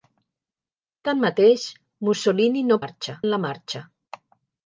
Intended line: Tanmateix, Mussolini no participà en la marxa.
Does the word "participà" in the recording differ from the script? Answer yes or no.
yes